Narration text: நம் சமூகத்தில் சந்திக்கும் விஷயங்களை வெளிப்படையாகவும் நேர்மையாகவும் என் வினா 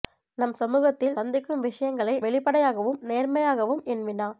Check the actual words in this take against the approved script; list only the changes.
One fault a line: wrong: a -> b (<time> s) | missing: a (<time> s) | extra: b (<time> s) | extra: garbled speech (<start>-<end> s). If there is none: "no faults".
no faults